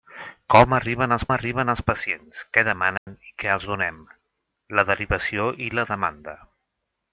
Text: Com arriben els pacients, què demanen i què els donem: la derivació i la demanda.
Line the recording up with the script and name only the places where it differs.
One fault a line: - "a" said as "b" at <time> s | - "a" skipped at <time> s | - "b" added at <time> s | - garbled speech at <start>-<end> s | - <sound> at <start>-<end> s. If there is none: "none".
- "arriben els" added at 1.3 s
- dropout at 3.0-3.1 s